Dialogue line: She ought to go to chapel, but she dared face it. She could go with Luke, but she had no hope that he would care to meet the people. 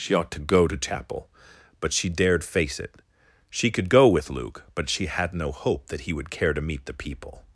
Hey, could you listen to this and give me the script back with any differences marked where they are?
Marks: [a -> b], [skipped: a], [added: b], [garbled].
She ought to go to chapel, but she dared face it. She could go with Luke, but she had no hope that he would care to meet the people.